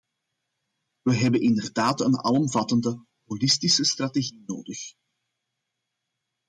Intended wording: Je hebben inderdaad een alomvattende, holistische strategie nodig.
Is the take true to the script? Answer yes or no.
no